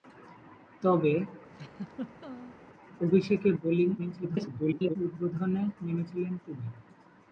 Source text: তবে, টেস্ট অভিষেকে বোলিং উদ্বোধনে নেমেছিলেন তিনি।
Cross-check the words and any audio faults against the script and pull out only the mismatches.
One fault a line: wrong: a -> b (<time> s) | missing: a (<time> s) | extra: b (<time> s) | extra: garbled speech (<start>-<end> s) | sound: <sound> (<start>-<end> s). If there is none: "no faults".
missing: টেস্ট (1.1 s)
sound: laugh (1.5-2.6 s)
extra: garbled speech (4.0-5.0 s)